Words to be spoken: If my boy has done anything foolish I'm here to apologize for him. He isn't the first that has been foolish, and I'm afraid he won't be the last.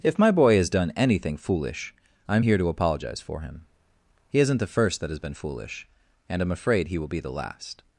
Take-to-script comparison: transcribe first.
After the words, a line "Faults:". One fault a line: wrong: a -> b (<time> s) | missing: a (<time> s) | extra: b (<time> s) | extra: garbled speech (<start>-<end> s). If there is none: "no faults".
If my boy has done anything foolish I'm here to apologize for him. He isn't the first that has been foolish, and I'm afraid he will be the last.
Faults:
wrong: won't -> will (7.0 s)